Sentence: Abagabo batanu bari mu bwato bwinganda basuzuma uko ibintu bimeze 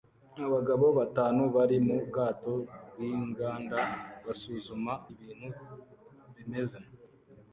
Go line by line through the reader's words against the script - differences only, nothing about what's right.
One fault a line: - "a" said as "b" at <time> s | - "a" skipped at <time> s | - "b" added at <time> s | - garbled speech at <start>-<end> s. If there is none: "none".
- "uko" skipped at 4.9 s